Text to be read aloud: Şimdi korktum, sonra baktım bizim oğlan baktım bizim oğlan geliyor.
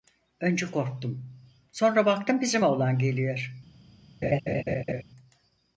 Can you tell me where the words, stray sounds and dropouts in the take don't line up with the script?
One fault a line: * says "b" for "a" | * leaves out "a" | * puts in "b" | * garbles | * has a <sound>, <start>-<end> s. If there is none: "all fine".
* says "Önce" for "Şimdi"
* leaves out "baktım bizim oğlan"
* has a laugh, 4.2-5.0 s